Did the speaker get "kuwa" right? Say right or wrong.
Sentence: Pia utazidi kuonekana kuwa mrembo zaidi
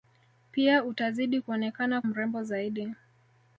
wrong